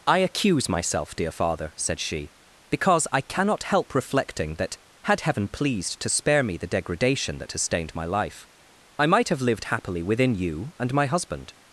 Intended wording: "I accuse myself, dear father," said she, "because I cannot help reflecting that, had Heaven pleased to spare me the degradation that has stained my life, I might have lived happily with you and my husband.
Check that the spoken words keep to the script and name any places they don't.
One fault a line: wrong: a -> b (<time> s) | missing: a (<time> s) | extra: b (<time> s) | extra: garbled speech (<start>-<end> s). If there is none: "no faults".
wrong: with -> within (10.0 s)